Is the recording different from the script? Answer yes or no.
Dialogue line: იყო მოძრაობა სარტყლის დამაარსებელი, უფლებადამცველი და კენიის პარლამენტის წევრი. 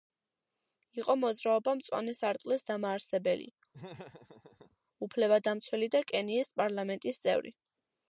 yes